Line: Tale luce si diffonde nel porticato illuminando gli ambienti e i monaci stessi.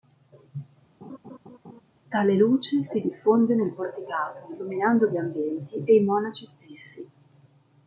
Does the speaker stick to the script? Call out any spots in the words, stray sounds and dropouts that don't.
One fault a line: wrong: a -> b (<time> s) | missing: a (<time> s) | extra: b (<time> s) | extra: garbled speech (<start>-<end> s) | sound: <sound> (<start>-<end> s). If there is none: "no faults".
sound: laugh (1.0-1.8 s)